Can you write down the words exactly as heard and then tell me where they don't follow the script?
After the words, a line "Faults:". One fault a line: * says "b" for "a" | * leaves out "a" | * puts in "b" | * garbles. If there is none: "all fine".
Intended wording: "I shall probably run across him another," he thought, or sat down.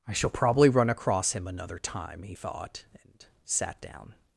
"I shall probably run across him another time," he thought, and sat down.
Faults:
* puts in "time"
* says "and" for "or"